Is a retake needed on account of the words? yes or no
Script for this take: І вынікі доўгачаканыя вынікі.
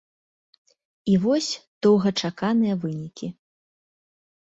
yes